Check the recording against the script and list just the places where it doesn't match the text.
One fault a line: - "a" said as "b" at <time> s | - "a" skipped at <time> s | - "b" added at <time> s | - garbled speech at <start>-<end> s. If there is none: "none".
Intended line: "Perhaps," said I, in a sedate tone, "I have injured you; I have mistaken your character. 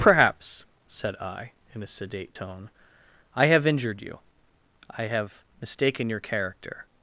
none